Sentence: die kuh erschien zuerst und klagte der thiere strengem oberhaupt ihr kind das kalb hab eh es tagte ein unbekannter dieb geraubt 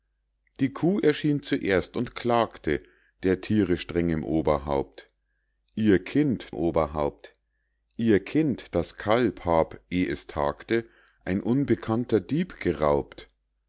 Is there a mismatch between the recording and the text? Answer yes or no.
yes